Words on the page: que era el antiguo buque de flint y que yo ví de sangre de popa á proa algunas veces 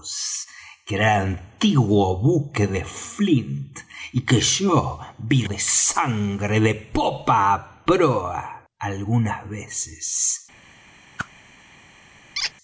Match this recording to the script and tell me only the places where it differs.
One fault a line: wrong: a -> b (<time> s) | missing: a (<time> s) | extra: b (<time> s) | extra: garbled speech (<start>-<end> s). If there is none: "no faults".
no faults